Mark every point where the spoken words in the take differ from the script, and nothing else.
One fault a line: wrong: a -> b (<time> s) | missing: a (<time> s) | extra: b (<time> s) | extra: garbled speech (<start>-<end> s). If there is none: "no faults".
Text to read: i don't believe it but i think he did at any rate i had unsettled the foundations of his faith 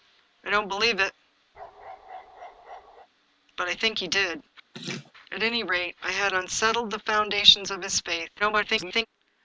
extra: garbled speech (8.4-9.1 s)